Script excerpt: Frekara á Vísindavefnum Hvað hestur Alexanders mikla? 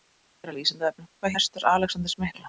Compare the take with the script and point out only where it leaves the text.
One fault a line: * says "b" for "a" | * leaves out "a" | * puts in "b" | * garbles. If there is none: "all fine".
all fine